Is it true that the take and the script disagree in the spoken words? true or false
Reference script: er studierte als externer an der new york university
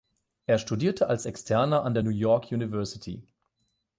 false